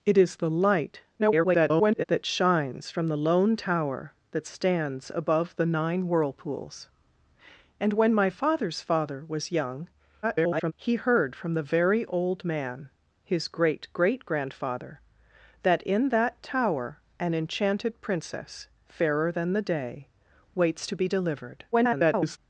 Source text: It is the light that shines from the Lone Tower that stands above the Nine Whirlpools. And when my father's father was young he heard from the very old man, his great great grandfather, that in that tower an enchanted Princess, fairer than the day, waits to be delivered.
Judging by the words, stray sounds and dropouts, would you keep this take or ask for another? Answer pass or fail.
fail